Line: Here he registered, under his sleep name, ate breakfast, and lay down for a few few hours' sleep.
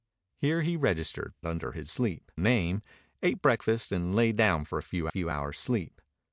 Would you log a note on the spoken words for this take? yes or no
no